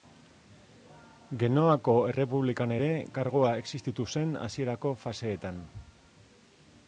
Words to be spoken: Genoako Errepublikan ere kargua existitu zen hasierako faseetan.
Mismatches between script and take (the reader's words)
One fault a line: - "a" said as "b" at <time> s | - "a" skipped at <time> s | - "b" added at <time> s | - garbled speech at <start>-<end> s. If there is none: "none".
none